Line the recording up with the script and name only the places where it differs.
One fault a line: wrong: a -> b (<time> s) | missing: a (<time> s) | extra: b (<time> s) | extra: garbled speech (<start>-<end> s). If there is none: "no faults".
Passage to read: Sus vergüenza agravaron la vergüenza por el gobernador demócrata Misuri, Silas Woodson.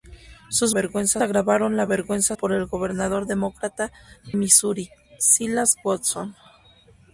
no faults